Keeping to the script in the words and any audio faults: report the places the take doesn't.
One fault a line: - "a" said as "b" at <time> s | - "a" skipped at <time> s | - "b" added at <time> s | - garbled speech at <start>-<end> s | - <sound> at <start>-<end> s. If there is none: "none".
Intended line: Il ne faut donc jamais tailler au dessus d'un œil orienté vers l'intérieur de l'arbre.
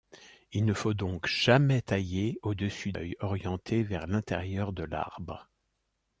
- "d'un" skipped at 2.9 s